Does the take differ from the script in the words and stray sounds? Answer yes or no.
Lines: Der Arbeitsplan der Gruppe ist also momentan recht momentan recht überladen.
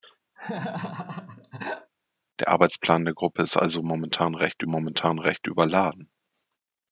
yes